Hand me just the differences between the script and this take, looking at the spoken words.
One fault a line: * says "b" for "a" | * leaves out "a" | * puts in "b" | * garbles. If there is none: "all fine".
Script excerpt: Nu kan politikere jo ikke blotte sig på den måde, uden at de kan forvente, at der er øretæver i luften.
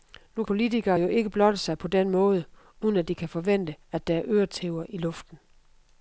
* leaves out "kan"